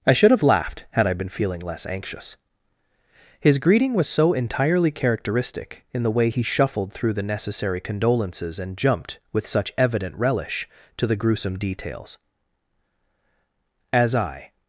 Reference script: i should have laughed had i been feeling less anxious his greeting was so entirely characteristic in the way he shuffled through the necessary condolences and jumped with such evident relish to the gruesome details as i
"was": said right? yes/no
yes